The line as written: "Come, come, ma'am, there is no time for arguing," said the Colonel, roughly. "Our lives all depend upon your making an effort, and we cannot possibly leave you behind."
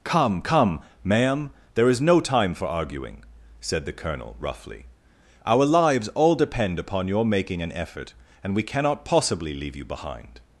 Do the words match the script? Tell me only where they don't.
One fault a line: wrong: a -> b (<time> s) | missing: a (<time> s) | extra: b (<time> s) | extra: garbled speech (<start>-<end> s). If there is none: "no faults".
no faults